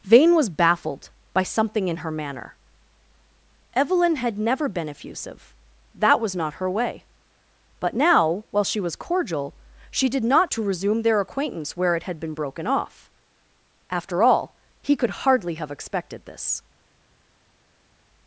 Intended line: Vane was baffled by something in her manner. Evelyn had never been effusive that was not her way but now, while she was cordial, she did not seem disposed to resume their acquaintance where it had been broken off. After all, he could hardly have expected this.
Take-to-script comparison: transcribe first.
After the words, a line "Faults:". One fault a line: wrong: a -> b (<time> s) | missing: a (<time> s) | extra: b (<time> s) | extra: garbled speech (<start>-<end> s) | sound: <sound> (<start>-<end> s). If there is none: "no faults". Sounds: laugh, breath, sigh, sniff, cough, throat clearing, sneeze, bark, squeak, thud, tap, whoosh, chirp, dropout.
Vane was baffled by something in her manner. Evelyn had never been effusive that was not her way but now, while she was cordial, she did not to resume their acquaintance where it had been broken off. After all, he could hardly have expected this.
Faults:
missing: seem disposed (10.5 s)